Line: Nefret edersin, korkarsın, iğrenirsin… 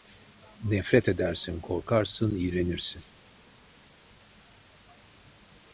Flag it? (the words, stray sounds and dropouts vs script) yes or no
no